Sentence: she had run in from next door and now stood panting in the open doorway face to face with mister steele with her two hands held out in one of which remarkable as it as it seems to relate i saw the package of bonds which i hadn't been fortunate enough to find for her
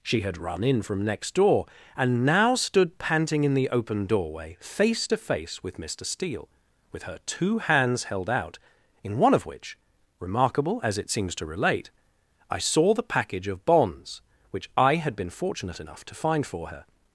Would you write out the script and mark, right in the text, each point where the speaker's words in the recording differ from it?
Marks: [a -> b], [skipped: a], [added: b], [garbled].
she had run in from next door and now stood panting in the open doorway face to face with mister steele with her two hands held out in one of which remarkable as it [skipped: as it] seems to relate i saw the package of bonds which i [hadn't -> had] been fortunate enough to find for her